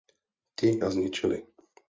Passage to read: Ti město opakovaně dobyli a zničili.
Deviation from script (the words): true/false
true